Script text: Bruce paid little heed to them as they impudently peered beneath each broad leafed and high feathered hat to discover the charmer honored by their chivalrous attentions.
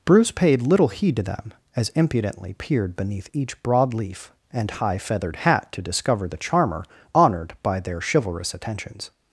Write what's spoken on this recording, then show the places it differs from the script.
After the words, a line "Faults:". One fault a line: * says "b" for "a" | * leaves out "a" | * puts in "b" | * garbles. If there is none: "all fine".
Bruce paid little heed to them as impudently peered beneath each broad leaf and high feathered hat to discover the charmer honored by their chivalrous attentions.
Faults:
* leaves out "they"
* says "leaf" for "leafed"